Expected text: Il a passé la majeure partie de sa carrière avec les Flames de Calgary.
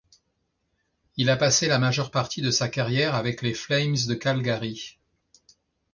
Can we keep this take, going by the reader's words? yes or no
yes